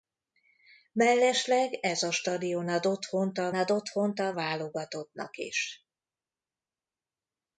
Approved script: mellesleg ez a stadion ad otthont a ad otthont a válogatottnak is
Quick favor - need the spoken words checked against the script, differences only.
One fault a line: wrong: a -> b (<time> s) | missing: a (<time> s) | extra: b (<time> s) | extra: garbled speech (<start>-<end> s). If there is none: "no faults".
no faults